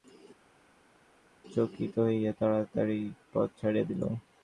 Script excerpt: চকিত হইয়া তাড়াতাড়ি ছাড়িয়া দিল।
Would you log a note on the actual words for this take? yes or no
yes